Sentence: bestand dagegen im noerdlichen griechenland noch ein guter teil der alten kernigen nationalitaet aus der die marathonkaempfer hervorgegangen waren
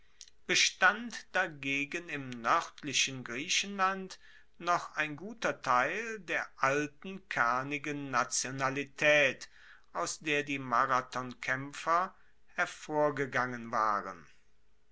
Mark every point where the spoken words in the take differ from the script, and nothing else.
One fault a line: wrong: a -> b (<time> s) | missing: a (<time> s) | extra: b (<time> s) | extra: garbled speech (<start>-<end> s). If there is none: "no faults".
no faults